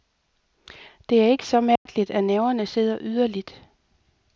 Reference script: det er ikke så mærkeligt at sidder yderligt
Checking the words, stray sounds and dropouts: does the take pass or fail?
fail